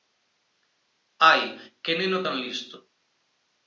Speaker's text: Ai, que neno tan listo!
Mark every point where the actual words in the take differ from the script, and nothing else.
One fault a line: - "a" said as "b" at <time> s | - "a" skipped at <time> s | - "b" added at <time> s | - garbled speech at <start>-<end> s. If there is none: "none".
none